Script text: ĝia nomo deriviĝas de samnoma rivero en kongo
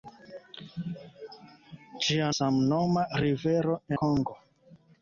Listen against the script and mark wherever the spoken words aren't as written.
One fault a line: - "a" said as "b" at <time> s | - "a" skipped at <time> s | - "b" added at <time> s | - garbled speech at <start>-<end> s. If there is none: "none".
- "nomo deriviĝas de" skipped at 2.3 s
- "en" skipped at 3.8 s